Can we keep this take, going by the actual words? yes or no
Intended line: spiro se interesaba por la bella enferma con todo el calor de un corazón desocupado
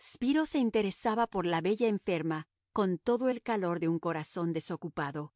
yes